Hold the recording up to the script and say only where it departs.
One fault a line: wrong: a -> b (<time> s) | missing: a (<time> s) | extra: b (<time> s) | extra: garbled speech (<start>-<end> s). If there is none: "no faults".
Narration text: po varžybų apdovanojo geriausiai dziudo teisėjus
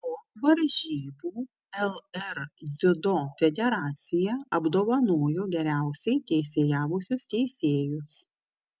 extra: lr dziudo federacija (1.9 s)
wrong: dziudo -> teisėjavusius (6.3 s)